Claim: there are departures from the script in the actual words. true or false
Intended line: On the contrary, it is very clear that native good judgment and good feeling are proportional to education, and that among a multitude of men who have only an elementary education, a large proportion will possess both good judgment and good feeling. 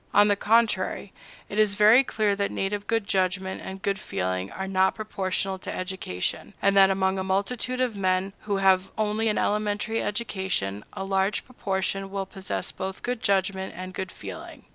true